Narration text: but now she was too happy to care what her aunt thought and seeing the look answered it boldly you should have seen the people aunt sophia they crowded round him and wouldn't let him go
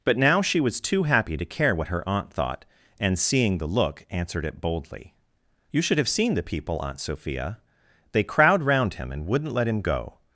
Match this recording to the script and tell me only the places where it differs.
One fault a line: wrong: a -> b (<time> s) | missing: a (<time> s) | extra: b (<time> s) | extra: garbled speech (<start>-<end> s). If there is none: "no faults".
wrong: crowded -> crowd (8.2 s)